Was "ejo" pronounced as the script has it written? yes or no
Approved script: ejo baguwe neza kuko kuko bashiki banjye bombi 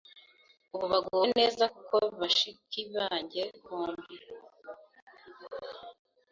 no